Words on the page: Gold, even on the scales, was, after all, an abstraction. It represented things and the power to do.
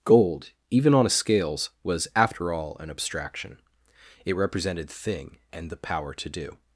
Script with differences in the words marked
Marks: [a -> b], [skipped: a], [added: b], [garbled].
Gold, even on [the -> a] scales, was, after all, an abstraction. It represented [things -> thing] and the power to do.